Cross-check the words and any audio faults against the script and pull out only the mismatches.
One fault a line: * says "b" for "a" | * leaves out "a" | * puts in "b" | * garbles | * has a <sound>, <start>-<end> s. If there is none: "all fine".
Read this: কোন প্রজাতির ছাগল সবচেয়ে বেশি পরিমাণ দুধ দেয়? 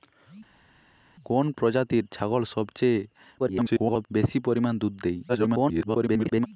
* garbles
* garbles